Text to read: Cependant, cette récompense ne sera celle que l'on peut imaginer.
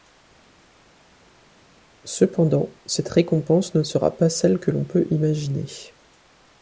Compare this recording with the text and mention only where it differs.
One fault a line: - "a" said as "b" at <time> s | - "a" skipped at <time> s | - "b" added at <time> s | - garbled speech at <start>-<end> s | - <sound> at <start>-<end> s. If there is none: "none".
- "pas" added at 4.2 s